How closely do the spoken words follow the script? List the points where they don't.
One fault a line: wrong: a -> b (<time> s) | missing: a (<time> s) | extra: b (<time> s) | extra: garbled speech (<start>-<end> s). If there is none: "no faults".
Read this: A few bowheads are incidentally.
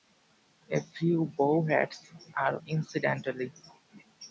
no faults